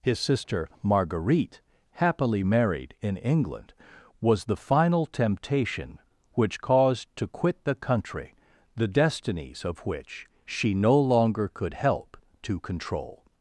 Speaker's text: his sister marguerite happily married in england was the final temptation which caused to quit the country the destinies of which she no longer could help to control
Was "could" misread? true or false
false